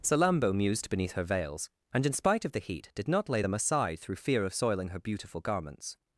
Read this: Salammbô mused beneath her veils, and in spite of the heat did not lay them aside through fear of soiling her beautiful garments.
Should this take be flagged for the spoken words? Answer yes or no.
no